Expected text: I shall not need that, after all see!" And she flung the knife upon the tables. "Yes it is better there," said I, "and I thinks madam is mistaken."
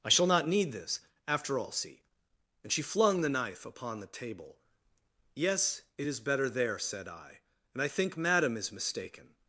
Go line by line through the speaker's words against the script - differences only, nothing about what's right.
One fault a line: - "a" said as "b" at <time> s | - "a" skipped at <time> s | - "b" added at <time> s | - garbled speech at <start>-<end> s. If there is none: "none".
- "that" said as "this" at 0.7 s
- "tables" said as "table" at 4.1 s
- "thinks" said as "think" at 7.9 s